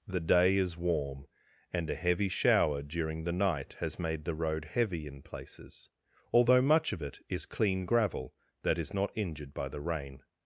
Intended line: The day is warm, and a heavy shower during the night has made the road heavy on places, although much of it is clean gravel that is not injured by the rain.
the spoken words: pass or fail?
fail